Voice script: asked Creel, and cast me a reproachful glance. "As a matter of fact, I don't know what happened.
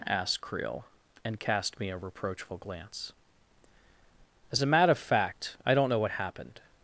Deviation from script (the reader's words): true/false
false